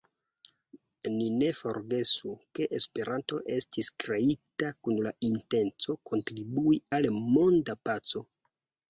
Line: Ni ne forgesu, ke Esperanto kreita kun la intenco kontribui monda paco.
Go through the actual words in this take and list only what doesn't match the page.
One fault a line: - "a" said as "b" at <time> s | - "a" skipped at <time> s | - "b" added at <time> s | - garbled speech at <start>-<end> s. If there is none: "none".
- "estis" added at 3.6 s
- "al" added at 7.0 s